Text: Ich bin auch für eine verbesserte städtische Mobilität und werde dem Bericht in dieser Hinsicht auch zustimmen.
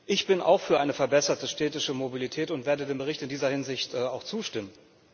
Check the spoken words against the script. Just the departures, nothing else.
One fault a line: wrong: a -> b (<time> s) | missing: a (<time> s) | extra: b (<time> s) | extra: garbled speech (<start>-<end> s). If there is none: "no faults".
no faults